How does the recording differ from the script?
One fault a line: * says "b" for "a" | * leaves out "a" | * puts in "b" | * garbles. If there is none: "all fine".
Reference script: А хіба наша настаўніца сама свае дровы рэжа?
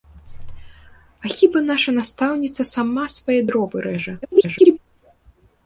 * garbles